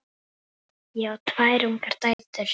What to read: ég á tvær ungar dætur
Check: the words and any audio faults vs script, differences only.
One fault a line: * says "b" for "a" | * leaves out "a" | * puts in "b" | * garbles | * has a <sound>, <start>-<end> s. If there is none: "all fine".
* has a dropout, 2.1-2.2 s